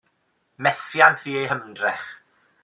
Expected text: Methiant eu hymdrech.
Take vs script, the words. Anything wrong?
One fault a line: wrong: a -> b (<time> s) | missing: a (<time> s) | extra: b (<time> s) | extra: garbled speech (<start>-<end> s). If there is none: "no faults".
extra: fu (1.2 s)